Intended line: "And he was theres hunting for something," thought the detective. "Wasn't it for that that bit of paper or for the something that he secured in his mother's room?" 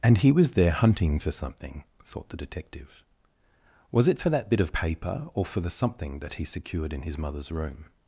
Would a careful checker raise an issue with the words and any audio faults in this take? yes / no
yes